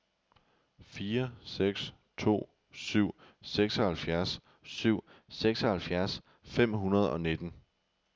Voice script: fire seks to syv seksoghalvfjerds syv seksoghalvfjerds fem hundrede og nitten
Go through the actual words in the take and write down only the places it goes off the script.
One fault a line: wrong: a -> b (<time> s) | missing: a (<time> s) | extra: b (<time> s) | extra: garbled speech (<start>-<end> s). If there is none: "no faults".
no faults